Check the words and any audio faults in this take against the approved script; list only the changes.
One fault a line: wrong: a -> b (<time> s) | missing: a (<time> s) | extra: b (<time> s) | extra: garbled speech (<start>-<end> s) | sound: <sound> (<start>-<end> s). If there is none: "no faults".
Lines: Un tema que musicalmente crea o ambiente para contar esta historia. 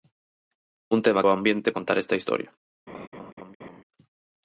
missing: que musicalmente crea (1.2 s)
missing: para (1.7 s)
sound: laugh (2.9-3.8 s)